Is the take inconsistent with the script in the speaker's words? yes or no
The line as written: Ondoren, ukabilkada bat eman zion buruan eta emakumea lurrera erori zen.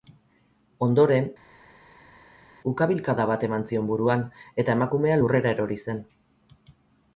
no